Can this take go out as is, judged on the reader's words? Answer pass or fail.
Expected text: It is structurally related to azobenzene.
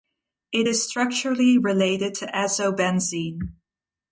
pass